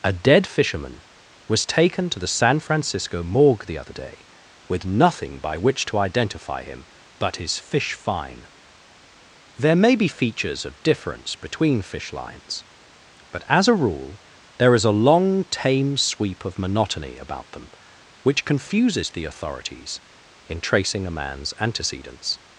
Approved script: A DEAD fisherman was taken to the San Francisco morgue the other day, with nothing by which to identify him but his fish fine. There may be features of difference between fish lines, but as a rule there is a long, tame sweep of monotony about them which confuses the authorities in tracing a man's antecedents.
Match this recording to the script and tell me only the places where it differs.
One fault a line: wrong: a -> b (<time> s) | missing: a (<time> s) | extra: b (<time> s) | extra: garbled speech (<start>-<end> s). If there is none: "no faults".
no faults